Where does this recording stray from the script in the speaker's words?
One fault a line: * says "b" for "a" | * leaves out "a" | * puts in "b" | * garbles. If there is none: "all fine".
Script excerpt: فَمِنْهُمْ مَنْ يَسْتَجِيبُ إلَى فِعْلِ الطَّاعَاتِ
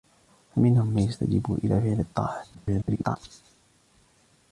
* garbles